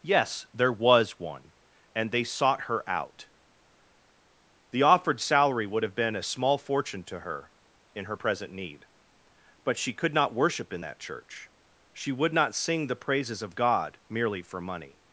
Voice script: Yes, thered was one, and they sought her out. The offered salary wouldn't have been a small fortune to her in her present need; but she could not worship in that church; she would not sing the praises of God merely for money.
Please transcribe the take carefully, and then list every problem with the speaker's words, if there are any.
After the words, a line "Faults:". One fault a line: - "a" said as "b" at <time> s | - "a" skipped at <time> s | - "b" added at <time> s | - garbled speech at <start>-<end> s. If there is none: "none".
Yes, there was one, and they sought her out. The offered salary would have been a small fortune to her in her present need; but she could not worship in that church; she would not sing the praises of God merely for money.
Faults:
- "thered" said as "there" at 0.5 s
- "wouldn't" said as "would" at 5.7 s